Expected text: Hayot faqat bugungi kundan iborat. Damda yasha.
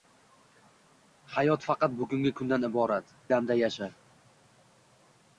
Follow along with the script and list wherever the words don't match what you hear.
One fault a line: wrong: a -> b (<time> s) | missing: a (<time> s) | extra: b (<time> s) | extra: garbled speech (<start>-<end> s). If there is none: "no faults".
no faults